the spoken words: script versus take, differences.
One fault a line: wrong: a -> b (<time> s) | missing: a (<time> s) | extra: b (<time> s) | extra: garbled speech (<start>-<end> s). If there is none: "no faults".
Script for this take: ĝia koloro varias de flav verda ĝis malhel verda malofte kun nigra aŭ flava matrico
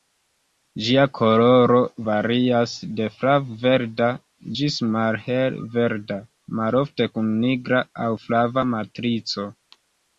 no faults